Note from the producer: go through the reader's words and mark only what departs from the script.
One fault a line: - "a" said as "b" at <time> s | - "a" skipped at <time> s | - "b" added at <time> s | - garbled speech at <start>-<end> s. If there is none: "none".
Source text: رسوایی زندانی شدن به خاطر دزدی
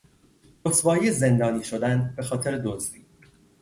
none